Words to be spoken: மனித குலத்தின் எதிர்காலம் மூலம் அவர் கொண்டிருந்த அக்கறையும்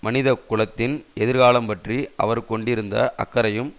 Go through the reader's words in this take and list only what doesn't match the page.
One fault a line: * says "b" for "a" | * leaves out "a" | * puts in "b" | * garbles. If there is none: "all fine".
* says "பற்றி" for "மூலம்"